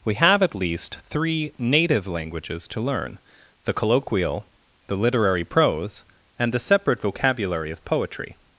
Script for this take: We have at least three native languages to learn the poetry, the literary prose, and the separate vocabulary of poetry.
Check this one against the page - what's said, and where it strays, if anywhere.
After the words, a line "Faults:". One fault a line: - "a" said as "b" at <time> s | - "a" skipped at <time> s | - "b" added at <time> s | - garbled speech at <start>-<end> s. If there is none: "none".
We have at least three native languages to learn the colloquial, the literary prose, and the separate vocabulary of poetry.
Faults:
- "poetry" said as "colloquial" at 3.7 s